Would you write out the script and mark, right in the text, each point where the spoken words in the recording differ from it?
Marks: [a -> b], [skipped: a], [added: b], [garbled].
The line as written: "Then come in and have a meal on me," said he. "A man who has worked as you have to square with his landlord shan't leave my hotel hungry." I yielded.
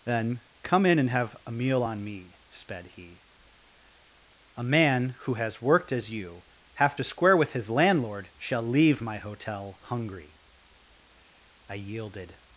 "Then come in and have a meal on me," [said -> sped] he. "A man who has worked as you have to square with his landlord [shan't -> shall] leave my hotel hungry." I yielded.